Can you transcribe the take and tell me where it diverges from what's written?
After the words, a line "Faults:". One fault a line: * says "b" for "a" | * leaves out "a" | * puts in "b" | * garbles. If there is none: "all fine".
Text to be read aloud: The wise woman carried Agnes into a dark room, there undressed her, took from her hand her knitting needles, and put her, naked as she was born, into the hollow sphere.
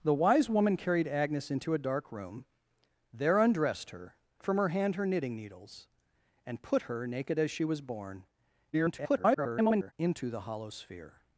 The wise woman carried Agnes into a dark room, there undressed her, from her hand her knitting needles, and put her, naked as she was born, [garbled] into the hollow sphere.
Faults:
* leaves out "took"
* garbles